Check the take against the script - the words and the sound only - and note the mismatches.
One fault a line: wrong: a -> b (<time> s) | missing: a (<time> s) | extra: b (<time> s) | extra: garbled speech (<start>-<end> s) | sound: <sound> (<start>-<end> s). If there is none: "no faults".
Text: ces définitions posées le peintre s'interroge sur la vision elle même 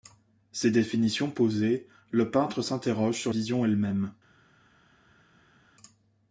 missing: la (3.3 s)